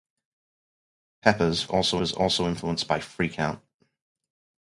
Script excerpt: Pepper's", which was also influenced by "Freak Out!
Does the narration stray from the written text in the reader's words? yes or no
yes